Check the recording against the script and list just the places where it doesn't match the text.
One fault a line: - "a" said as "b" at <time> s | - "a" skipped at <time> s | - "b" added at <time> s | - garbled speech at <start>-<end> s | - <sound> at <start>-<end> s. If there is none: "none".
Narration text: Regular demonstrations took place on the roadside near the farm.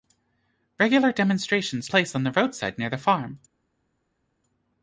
- "took" skipped at 1.9 s